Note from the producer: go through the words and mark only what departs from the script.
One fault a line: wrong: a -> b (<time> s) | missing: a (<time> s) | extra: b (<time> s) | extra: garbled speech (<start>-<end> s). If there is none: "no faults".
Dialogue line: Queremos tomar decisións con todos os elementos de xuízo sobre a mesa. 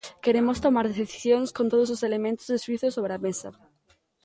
no faults